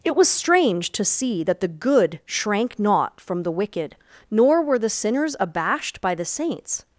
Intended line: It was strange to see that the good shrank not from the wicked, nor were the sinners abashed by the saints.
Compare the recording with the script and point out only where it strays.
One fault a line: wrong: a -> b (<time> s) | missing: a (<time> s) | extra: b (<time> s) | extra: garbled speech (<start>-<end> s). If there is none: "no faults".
no faults